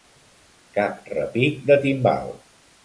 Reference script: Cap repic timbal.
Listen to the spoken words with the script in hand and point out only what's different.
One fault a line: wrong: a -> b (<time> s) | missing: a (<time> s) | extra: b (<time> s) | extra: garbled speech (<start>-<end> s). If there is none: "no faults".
extra: de (1.7 s)